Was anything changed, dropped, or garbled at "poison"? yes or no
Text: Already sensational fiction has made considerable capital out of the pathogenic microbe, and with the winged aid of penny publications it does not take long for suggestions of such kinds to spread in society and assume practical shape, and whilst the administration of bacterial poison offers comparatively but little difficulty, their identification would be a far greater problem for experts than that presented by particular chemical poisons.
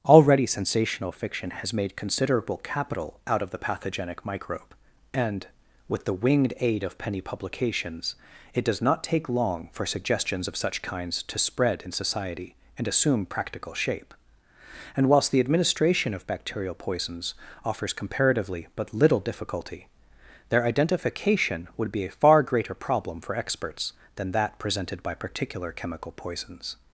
yes